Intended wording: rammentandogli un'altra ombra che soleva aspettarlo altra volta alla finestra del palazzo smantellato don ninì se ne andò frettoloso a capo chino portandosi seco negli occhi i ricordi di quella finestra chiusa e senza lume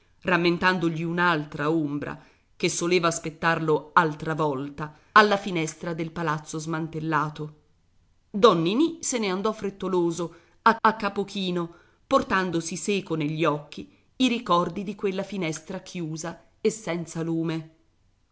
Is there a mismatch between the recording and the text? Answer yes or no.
yes